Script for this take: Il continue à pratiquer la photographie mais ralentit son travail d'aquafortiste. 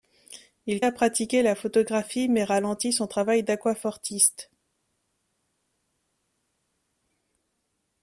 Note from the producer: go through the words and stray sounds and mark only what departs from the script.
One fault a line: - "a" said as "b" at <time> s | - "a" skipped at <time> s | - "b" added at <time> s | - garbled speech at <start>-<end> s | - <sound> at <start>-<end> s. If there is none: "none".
- "continue" skipped at 0.8 s